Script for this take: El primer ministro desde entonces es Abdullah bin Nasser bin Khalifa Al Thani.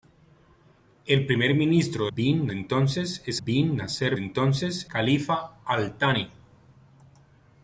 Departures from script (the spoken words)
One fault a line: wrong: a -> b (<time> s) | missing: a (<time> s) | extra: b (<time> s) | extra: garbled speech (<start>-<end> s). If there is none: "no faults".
wrong: desde -> bin (2.1 s)
missing: Abdullah (3.4 s)
wrong: bin -> entonces (4.2 s)